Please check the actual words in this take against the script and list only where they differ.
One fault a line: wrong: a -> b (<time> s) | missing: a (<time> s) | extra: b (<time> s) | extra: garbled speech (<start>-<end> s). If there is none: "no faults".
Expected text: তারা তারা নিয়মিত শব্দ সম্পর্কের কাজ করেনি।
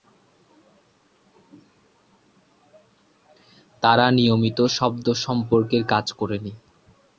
missing: তারা (4.0 s)